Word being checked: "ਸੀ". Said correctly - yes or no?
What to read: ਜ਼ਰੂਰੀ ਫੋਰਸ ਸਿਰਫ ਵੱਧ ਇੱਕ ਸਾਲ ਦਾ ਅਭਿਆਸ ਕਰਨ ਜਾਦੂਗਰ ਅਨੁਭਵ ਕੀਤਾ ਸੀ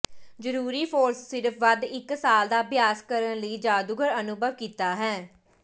no